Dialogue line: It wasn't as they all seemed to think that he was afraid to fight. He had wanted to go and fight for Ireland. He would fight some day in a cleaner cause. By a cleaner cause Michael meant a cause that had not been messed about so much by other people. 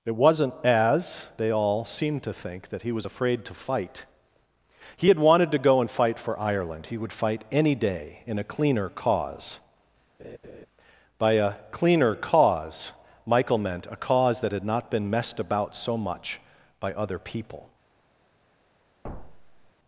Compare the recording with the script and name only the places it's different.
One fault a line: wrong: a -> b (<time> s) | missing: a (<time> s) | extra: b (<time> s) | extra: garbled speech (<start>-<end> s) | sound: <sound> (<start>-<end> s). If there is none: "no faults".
wrong: some -> any (7.5 s)
sound: laugh (10.2-10.7 s)
sound: thud (19.0-19.7 s)